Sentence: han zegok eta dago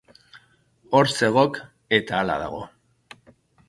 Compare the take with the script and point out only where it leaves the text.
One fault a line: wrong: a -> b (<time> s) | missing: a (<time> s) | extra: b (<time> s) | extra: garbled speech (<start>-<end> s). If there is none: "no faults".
wrong: han -> hor (0.9 s)
extra: hala (2.2 s)